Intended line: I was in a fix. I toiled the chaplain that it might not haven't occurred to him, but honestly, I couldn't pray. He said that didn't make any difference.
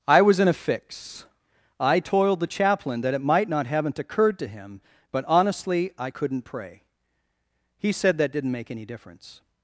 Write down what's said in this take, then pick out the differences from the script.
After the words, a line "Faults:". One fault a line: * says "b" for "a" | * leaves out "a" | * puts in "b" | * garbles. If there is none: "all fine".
I was in a fix. I toiled the chaplain that it might not haven't occurred to him, but honestly, I couldn't pray. He said that didn't make any difference.
Faults:
all fine